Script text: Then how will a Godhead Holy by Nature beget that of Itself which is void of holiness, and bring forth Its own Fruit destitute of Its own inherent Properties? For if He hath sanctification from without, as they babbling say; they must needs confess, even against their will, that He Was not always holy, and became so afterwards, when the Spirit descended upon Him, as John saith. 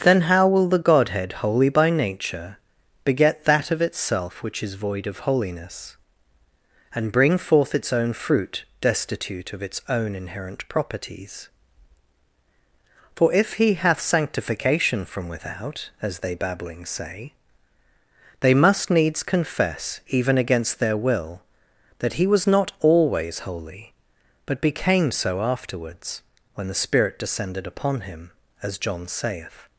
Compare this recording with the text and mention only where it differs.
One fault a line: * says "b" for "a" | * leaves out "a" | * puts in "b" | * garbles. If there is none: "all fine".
* says "the" for "a"
* says "but" for "and"